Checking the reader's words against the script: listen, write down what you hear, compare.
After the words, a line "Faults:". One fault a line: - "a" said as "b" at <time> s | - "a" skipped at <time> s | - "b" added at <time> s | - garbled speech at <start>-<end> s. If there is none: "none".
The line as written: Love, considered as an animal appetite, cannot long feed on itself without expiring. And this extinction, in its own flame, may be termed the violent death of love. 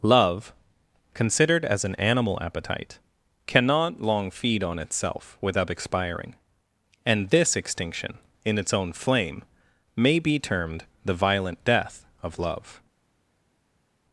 Love, considered as an animal appetite, cannot long feed on itself without expiring. And this extinction, in its own flame, may be termed the violent death of love.
Faults:
none